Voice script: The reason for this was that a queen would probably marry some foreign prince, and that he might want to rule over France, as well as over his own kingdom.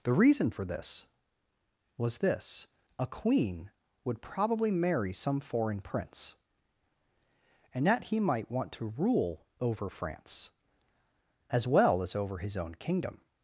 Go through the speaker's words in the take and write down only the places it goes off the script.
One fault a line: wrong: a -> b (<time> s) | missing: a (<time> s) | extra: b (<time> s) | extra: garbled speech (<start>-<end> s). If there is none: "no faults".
wrong: that -> this (2.2 s)